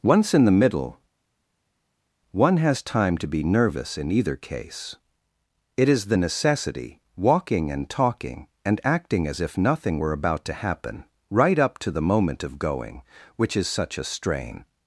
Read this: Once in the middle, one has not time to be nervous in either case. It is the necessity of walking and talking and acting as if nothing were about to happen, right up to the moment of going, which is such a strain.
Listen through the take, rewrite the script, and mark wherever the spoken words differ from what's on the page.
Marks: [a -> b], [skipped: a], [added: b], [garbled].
Once in the middle, one has [skipped: not] time to be nervous in either case. It is the necessity [skipped: of] walking and talking and acting as if nothing were about to happen, right up to the moment of going, which is such a strain.